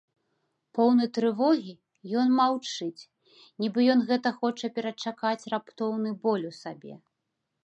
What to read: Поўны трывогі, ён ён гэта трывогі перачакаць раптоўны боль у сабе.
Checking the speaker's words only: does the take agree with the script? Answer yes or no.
no